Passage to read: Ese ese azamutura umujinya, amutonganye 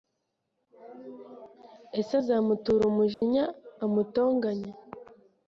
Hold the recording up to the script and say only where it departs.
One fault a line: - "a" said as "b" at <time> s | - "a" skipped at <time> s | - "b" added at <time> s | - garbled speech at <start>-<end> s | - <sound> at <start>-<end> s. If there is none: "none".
- "ese" skipped at 2.1 s
- dropout at 3.1-3.2 s